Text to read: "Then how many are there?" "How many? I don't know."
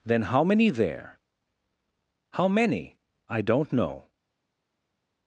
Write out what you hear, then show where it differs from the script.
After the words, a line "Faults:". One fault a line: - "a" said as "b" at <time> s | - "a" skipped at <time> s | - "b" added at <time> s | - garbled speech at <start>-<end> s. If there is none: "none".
"Then how many there?" "How many? I don't know."
Faults:
- "are" skipped at 0.7 s